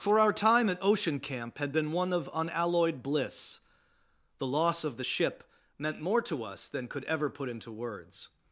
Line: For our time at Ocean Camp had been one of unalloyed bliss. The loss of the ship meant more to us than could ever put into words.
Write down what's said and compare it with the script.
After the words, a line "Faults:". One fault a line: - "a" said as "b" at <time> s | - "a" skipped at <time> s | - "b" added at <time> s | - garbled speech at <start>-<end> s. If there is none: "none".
For our time at Ocean Camp had been one of unalloyed bliss. The loss of the ship meant more to us than could ever put into words.
Faults:
none